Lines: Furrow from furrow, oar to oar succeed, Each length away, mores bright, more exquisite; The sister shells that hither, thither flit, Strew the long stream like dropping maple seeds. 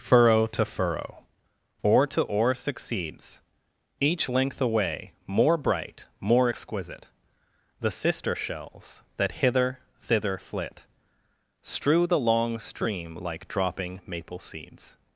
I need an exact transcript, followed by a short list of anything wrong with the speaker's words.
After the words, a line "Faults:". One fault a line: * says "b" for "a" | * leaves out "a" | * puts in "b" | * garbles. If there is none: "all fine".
Furrow to furrow, oar to oar succeeds, Each length away, more bright, more exquisite; The sister shells that hither, thither flit, Strew the long stream like dropping maple seeds.
Faults:
* says "to" for "from"
* says "succeeds" for "succeed"
* says "more" for "mores"